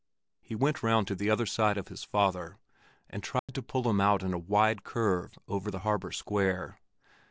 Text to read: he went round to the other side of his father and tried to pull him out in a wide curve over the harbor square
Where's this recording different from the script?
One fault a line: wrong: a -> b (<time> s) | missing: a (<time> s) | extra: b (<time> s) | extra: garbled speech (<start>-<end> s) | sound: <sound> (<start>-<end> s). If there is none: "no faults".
sound: dropout (3.4-3.5 s)